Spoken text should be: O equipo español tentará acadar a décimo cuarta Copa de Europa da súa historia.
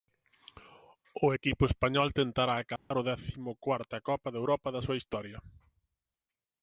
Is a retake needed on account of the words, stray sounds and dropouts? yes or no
yes